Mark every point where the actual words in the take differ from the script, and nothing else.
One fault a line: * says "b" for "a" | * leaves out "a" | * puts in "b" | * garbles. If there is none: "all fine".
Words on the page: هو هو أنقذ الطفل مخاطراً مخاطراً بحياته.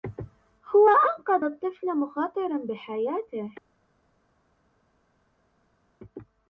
* leaves out "هو"
* leaves out "مخاطراً"